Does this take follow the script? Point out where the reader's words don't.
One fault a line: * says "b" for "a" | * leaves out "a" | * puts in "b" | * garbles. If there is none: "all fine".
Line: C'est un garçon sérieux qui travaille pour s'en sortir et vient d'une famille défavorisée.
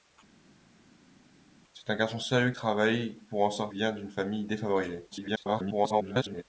* leaves out "qui"
* leaves out "sortir et"
* garbles